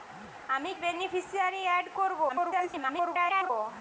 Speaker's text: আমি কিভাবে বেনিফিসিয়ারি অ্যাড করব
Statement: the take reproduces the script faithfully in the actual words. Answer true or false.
false